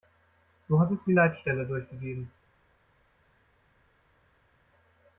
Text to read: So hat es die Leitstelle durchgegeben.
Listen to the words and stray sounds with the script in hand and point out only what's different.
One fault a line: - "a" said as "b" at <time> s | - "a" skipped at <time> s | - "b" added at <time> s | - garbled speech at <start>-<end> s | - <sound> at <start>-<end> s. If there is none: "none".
none